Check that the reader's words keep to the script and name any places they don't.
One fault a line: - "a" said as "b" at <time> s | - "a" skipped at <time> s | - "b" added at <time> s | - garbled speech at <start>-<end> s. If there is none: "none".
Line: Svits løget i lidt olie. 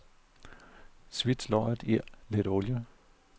none